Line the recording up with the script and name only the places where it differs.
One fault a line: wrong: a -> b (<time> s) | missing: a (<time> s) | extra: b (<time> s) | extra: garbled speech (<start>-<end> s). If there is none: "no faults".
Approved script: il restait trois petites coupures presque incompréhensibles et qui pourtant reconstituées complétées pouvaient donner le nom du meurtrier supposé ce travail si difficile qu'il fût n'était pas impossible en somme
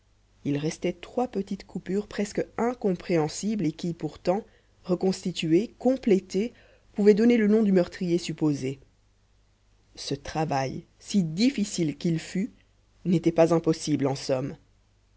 no faults